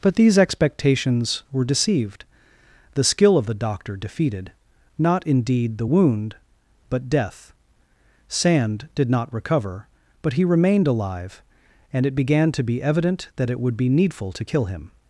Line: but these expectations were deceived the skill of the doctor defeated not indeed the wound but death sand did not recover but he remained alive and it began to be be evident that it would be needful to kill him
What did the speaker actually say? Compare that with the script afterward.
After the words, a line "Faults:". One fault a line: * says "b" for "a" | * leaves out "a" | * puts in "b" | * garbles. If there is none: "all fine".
but these expectations were deceived the skill of the doctor defeated not indeed the wound but death sand did not recover but he remained alive and it began to be evident that it would be needful to kill him
Faults:
* leaves out "be"